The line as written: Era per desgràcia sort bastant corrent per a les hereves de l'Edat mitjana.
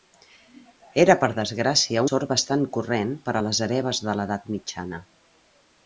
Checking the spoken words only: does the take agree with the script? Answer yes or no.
yes